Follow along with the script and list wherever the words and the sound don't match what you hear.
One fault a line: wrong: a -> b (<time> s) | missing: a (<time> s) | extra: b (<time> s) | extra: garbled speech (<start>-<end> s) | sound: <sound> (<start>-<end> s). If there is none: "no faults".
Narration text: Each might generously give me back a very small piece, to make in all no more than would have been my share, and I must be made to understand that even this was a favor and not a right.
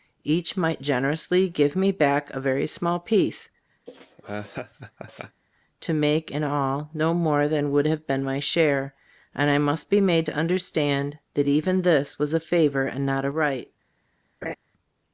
sound: laugh (3.9-5.4 s)
sound: laugh (14.4-14.6 s)